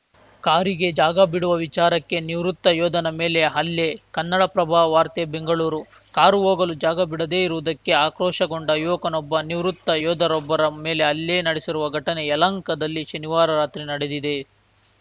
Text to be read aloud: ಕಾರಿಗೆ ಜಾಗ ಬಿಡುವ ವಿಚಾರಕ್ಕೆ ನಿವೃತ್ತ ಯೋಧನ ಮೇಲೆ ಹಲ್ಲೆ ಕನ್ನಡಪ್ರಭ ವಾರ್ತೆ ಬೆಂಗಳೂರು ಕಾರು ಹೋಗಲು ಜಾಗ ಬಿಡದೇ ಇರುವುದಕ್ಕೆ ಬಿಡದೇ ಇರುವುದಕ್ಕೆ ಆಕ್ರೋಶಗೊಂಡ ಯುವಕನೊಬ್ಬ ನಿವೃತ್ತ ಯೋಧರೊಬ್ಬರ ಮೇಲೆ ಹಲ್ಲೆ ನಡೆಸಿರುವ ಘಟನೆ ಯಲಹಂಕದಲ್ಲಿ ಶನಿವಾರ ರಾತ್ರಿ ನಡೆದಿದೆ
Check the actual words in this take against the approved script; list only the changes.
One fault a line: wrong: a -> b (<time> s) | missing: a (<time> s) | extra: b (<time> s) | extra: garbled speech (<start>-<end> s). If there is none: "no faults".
missing: ಬಿಡದೇ ಇರುವುದಕ್ಕೆ (7.9 s)